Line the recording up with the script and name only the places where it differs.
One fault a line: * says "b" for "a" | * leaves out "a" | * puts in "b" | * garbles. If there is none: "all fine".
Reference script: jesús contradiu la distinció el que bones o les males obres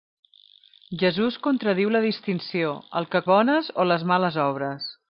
all fine